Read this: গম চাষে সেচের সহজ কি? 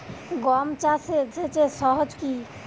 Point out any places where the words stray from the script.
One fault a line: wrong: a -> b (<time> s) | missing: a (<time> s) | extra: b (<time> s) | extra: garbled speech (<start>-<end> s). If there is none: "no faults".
no faults